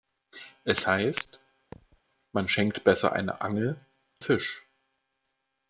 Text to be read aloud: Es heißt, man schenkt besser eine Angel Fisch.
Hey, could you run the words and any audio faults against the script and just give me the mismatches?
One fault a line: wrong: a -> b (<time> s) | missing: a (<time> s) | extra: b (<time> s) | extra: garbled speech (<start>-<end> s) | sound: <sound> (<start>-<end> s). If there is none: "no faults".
sound: thud (1.7-2.0 s)